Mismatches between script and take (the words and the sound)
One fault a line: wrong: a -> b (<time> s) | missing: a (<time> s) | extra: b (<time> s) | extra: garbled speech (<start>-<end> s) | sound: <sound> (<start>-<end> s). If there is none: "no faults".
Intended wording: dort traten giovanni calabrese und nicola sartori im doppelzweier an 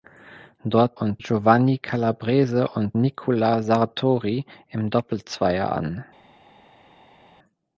wrong: traten -> und (0.9 s)